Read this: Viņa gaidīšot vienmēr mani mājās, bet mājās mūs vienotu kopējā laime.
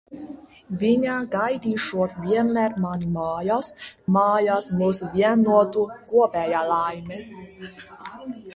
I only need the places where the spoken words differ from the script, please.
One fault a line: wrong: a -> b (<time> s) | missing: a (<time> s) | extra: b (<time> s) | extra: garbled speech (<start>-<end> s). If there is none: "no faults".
missing: bet (3.7 s)